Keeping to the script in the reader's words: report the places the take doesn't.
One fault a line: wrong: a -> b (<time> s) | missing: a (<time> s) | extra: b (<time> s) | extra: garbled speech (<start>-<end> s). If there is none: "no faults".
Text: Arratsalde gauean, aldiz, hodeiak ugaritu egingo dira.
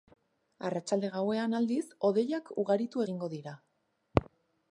no faults